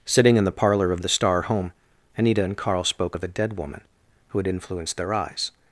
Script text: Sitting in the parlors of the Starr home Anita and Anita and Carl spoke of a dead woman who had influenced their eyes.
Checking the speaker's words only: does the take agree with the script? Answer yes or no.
no